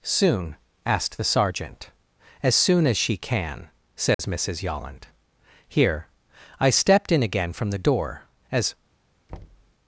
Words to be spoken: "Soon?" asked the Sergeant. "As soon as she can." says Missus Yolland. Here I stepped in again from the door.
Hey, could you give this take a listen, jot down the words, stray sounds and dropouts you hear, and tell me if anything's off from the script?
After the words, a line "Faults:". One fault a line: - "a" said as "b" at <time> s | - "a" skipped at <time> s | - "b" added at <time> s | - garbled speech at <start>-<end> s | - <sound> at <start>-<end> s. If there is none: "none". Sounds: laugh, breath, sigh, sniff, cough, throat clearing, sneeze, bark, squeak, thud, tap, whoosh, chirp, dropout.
"Soon?" asked the Sergeant. "As soon as she can." says Missus Yolland. Here I stepped in again from the door. As
Faults:
- dropout at 4.1-4.2 s
- "As" added at 8.5 s
- thud at 9.3-9.7 s